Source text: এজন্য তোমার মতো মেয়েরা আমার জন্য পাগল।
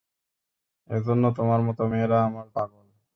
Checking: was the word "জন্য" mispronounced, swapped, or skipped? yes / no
yes